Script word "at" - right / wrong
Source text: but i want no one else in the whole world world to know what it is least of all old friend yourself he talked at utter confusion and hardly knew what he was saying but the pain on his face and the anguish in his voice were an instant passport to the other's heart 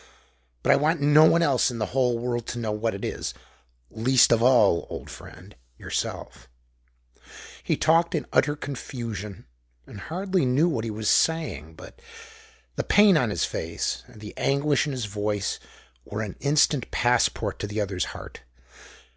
wrong